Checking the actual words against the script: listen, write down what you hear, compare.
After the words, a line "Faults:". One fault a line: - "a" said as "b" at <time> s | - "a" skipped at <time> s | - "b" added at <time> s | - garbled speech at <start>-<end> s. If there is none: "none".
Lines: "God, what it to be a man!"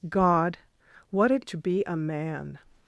"God, what it to be a man!"
Faults:
none